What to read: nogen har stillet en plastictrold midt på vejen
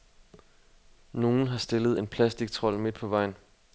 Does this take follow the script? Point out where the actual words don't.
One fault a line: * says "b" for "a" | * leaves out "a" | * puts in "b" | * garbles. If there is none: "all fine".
all fine